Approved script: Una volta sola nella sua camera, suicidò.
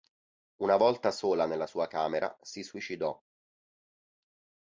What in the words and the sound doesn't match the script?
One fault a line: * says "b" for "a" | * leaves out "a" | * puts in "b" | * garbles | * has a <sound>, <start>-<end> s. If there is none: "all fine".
* puts in "si"